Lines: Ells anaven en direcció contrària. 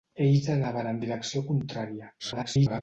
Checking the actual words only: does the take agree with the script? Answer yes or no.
no